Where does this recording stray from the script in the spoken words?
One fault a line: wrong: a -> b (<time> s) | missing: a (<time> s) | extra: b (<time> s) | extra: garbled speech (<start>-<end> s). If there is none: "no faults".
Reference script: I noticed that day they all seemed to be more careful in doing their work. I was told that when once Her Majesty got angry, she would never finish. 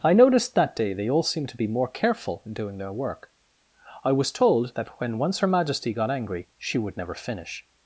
no faults